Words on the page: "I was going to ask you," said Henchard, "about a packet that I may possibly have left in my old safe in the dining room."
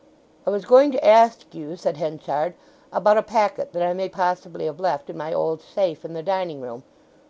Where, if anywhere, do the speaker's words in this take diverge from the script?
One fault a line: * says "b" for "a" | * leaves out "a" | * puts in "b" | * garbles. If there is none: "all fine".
all fine